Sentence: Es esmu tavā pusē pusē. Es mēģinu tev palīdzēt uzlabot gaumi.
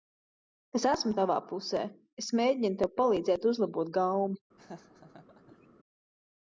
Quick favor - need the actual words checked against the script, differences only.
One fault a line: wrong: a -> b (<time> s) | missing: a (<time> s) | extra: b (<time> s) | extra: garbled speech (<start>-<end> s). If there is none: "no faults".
missing: pusē (1.8 s)